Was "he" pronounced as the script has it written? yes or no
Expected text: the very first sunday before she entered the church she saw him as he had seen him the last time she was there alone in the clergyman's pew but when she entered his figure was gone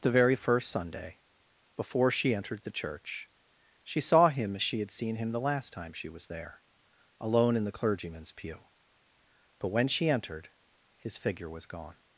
no